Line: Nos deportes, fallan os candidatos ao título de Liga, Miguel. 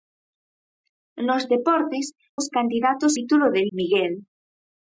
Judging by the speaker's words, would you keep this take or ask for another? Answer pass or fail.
fail